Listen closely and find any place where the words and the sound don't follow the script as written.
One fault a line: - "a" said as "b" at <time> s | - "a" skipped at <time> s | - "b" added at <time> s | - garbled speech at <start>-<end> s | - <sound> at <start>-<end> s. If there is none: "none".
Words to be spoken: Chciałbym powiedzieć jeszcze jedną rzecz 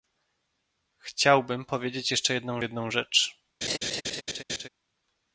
- "jedną" added at 2.6 s
- laugh at 3.6-4.7 s